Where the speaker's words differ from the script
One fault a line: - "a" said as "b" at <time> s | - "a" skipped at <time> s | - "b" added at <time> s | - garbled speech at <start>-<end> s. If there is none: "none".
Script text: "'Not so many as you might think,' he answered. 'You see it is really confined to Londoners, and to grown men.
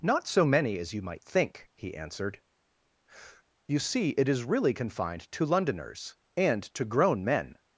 none